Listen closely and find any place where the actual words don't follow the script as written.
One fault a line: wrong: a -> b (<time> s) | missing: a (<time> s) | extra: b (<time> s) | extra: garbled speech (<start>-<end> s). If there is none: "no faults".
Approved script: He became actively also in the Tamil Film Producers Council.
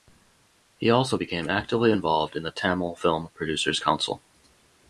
extra: also (0.9 s)
wrong: also -> involved (1.9 s)